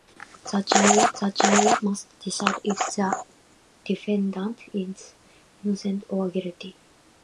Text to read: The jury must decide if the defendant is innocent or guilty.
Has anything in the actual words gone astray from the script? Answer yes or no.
yes